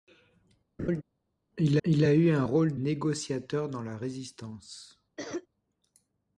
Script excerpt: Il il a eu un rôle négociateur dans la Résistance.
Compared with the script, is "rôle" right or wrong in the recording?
right